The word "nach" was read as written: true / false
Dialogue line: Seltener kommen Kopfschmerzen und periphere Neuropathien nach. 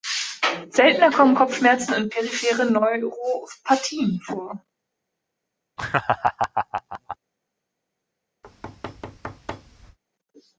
false